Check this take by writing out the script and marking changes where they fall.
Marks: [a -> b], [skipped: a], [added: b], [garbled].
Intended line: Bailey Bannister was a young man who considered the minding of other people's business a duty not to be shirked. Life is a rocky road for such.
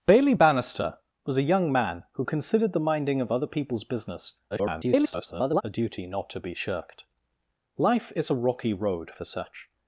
Bailey Bannister was a young man who considered the minding of other people's business [garbled] a duty not to be shirked. Life is a rocky road for such.